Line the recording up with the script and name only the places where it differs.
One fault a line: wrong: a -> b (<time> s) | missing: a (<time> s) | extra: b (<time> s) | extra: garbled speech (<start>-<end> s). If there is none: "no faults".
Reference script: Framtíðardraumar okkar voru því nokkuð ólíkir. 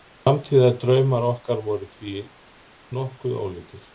no faults